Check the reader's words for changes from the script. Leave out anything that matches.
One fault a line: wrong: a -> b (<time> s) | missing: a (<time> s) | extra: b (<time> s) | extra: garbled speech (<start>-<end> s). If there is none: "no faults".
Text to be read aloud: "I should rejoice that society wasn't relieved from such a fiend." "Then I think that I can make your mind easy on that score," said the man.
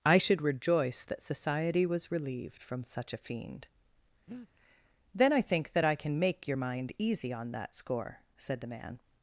wrong: wasn't -> was (1.9 s)